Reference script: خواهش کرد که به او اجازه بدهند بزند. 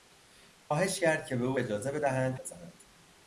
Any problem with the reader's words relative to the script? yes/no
no